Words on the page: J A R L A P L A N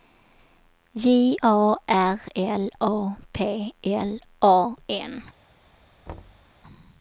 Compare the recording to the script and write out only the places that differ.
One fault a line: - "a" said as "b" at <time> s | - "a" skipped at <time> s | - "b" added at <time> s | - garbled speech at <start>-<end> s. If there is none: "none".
none